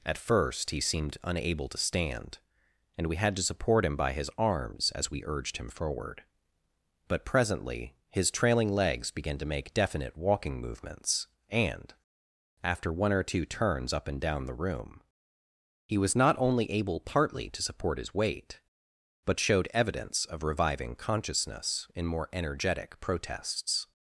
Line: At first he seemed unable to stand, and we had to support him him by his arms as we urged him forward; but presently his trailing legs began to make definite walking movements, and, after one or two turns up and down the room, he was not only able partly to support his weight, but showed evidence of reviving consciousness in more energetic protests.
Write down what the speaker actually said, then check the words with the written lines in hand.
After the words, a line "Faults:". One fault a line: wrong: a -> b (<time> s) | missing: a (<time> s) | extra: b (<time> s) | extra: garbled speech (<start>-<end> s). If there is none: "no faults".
At first he seemed unable to stand, and we had to support him by his arms as we urged him forward; but presently his trailing legs began to make definite walking movements, and, after one or two turns up and down the room, he was not only able partly to support his weight, but showed evidence of reviving consciousness in more energetic protests.
Faults:
missing: him (4.0 s)